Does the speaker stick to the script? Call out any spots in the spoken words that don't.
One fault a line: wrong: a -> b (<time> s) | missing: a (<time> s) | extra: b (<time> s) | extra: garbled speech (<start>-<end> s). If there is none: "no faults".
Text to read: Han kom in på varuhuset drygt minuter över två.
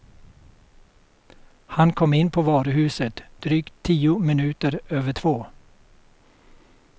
extra: tio (3.8 s)